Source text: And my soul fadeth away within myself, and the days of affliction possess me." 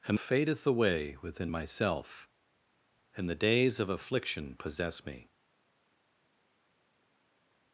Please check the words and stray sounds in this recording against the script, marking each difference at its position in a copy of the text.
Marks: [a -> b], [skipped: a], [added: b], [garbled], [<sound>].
And [skipped: my soul] fadeth away within myself, and the days of affliction possess me."